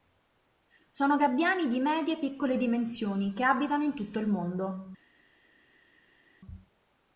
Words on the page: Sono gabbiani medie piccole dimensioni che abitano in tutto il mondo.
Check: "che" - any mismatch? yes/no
no